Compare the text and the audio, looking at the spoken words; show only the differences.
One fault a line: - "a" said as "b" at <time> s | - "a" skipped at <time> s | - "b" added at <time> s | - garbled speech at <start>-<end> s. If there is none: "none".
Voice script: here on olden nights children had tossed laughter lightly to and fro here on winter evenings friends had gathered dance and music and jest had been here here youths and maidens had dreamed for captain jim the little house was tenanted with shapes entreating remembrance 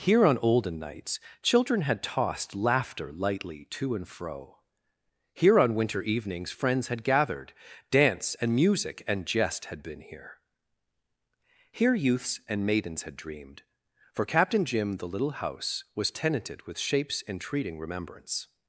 none